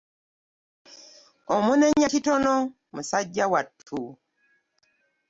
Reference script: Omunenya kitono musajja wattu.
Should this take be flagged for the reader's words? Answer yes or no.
no